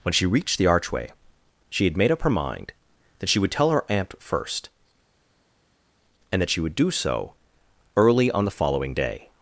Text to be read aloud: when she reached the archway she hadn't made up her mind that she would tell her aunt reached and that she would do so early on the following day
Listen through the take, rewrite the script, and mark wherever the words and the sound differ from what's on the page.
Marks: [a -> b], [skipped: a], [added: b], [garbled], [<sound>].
when she reached the archway she [hadn't -> had] made up her mind that she would tell her aunt [reached -> first] and that she would do so early on the following day